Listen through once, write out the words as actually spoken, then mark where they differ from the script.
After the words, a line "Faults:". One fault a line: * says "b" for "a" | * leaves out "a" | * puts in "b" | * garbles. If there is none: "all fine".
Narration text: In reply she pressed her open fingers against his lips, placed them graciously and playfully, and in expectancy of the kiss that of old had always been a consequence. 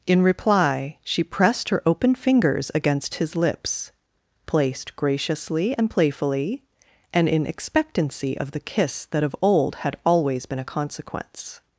In reply she pressed her open fingers against his lips, placed graciously and playfully, and in expectancy of the kiss that of old had always been a consequence.
Faults:
* leaves out "them"